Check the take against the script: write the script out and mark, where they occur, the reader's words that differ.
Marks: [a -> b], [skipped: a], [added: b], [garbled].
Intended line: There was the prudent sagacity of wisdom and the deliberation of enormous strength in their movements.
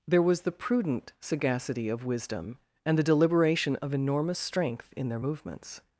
There was the prudent sagacity of wisdom and the deliberation of enormous strength in their movements.